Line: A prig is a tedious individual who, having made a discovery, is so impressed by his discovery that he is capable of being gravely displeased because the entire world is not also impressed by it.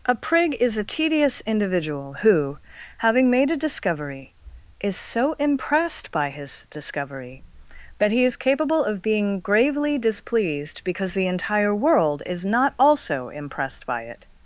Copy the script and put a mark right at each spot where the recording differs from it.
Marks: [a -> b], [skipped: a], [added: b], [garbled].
A prig is a tedious individual who, having made a discovery, is so impressed by his discovery that he is capable of being gravely displeased because the entire world is not also impressed by it.